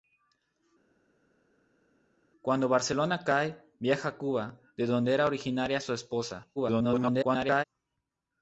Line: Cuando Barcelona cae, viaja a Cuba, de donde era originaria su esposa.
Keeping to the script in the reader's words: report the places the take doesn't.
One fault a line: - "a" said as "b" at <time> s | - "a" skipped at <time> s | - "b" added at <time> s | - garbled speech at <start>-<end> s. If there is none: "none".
- garbled speech at 6.6-7.6 s